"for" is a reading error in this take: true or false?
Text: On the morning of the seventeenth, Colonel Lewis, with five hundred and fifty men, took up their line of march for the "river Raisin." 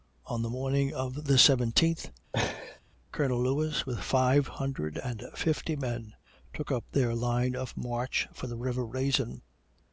false